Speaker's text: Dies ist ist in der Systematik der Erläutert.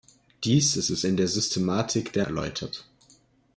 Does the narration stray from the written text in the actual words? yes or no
no